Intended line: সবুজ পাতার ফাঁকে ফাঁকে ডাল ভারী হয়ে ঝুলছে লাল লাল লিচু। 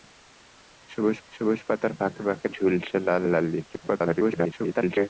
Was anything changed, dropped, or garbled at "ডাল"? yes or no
yes